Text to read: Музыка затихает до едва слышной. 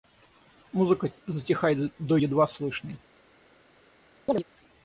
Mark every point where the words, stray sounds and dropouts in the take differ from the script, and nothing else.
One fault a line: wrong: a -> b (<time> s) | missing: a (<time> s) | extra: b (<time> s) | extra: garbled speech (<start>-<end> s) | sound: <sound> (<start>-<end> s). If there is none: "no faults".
sound: chirp (4.3-4.4 s)